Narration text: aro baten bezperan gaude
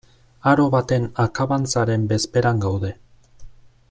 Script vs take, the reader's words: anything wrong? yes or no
yes